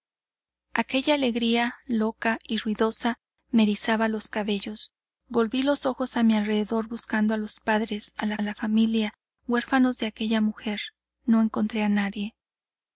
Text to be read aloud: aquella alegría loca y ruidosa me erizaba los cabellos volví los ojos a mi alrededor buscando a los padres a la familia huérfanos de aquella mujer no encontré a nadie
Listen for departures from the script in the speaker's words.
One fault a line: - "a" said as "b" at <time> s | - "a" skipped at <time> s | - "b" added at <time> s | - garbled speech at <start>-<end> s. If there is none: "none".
- "la" added at 8.4 s